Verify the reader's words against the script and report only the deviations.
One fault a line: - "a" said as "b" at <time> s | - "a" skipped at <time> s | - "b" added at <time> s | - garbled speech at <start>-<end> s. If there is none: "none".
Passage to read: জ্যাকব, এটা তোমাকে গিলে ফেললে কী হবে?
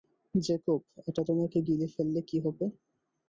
none